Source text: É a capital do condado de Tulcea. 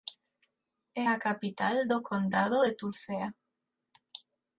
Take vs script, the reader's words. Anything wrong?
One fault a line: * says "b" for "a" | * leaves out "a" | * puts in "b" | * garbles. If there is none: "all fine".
all fine